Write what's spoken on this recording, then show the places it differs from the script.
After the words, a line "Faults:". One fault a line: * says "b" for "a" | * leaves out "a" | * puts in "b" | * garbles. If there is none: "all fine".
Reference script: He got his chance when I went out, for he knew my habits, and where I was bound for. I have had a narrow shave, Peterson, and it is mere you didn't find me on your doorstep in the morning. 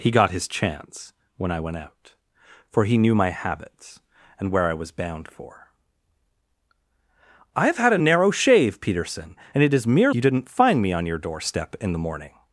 He got his chance when I went out, for he knew my habits, and where I was bound for. I have had a narrow shave, Peterson, and it is mere you didn't find me on your doorstep in the morning.
Faults:
all fine